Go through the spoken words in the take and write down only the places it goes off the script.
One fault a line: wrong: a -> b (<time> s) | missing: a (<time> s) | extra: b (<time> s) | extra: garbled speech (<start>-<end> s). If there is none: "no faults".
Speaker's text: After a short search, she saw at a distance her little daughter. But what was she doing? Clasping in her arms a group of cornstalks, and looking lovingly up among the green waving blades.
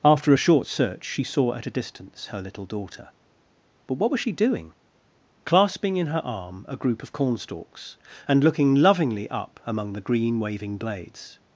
wrong: arms -> arm (6.2 s)